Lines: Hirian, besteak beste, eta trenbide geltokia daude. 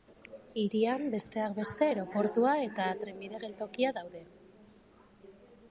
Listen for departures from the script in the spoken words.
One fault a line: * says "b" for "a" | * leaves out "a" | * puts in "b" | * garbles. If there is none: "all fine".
* puts in "aireportua"